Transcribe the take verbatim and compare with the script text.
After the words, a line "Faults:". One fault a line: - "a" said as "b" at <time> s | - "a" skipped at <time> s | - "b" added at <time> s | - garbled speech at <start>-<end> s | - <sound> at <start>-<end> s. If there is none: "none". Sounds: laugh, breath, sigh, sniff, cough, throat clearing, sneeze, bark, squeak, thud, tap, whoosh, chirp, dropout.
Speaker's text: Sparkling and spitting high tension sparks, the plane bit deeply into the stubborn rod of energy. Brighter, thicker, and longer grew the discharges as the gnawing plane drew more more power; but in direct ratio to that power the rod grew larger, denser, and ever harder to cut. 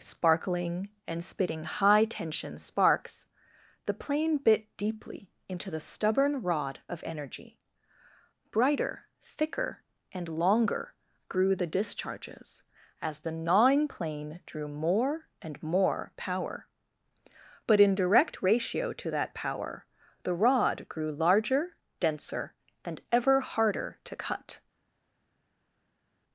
Sparkling and spitting high tension sparks, the plane bit deeply into the stubborn rod of energy. Brighter, thicker, and longer grew the discharges as the gnawing plane drew more and more power; but in direct ratio to that power the rod grew larger, denser, and ever harder to cut.
Faults:
- "and" added at 15.4 s